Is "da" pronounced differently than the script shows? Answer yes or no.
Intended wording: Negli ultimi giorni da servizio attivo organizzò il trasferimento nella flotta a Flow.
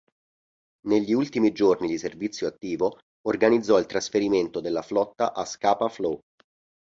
yes